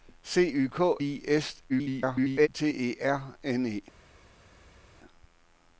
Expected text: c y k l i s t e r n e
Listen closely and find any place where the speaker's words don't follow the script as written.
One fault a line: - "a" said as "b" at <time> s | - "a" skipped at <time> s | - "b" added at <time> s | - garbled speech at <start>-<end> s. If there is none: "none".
- "l" skipped at 1.0 s
- garbled speech at 1.7-2.5 s